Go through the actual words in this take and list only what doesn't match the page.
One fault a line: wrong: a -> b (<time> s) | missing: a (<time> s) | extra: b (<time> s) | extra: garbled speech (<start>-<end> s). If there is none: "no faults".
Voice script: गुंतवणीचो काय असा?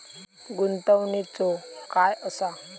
no faults